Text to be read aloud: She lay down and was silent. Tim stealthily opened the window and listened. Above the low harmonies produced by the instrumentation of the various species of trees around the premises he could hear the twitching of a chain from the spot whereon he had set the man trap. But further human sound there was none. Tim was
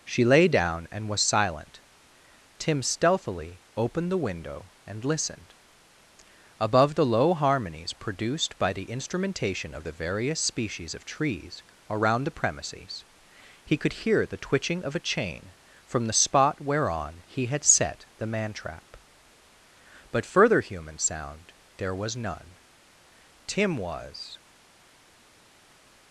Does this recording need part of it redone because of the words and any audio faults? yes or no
no